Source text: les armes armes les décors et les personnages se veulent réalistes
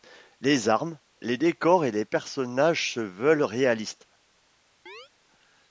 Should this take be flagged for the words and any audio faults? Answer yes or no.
yes